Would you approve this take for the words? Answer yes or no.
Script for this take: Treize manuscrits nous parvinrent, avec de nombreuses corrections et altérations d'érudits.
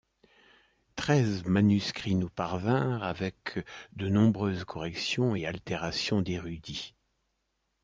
yes